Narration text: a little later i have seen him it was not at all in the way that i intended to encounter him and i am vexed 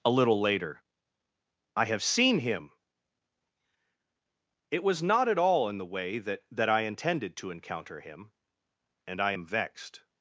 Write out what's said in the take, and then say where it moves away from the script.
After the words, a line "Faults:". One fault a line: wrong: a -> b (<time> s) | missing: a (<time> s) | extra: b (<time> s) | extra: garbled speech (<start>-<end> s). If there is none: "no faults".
a little later i have seen him it was not at all in the way that that i intended to encounter him and i am vexed
Faults:
extra: that (6.5 s)